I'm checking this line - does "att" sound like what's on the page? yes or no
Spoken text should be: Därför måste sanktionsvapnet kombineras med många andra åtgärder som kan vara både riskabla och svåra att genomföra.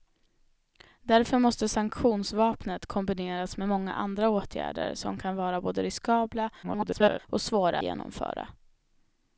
no